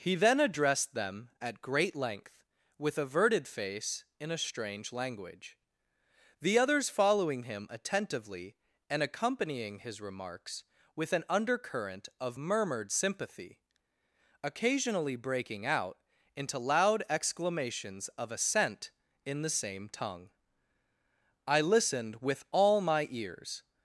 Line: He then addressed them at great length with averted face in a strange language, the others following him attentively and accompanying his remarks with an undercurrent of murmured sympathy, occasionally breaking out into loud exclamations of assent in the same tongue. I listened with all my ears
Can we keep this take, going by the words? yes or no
yes